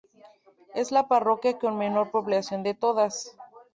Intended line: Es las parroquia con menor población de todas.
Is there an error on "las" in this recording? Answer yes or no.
yes